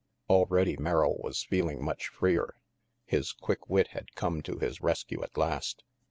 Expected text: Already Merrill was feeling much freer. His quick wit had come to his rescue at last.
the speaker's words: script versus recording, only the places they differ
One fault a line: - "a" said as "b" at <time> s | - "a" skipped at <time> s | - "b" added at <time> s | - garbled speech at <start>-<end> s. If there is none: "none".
none